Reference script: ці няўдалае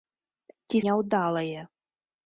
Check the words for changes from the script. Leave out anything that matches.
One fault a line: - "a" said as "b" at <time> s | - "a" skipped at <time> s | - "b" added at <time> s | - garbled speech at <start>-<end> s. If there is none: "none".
none